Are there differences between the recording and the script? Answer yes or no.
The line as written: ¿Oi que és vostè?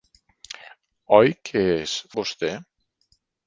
no